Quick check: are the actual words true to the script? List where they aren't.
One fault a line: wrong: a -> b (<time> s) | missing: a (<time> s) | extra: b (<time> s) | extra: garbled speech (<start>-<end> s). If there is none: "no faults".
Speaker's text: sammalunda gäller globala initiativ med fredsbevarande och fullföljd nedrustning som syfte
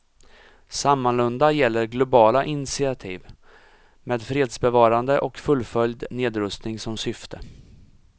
no faults